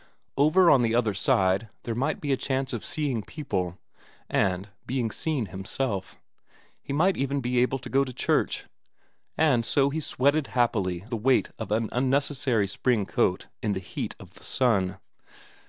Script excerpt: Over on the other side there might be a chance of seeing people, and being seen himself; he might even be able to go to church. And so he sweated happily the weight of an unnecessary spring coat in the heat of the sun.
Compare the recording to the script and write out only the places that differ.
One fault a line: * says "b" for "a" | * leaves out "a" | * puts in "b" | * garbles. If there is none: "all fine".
all fine